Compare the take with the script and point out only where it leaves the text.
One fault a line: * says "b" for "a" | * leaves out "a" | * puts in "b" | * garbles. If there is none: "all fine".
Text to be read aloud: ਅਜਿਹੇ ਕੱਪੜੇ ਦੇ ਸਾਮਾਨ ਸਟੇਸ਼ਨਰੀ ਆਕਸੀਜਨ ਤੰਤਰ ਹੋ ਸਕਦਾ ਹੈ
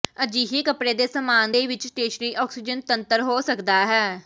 * puts in "ਦੇ ਵਿੱਚ"